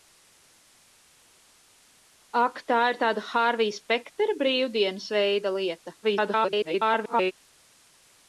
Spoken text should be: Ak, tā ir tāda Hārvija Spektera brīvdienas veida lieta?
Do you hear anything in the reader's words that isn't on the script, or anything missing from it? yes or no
yes